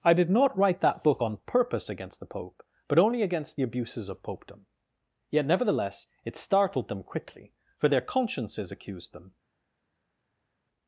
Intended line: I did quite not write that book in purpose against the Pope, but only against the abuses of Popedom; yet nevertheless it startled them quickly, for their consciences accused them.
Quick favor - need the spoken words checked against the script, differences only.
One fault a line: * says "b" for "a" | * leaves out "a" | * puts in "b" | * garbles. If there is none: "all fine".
* leaves out "quite"
* says "on" for "in"